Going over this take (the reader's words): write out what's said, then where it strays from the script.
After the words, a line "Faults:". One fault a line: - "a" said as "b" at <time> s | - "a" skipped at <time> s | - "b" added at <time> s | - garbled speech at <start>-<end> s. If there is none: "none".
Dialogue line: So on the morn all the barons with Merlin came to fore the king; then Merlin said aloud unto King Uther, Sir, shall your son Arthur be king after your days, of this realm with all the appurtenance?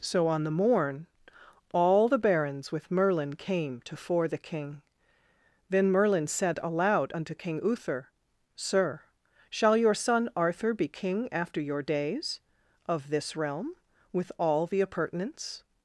So on the morn all the barons with Merlin came to fore the king; then Merlin said aloud unto King Uther, Sir, shall your son Arthur be king after your days, of this realm with all the appurtenance?
Faults:
none